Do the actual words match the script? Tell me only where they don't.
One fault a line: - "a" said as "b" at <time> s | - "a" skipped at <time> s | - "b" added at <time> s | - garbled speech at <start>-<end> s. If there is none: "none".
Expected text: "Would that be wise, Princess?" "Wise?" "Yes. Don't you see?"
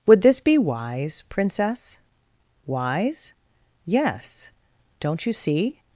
- "that" said as "this" at 0.2 s